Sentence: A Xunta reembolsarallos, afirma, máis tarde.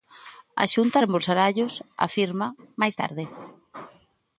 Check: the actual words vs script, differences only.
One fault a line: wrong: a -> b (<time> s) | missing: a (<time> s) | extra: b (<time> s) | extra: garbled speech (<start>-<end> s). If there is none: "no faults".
no faults